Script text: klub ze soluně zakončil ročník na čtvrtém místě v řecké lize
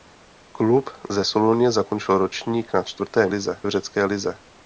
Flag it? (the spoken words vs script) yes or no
yes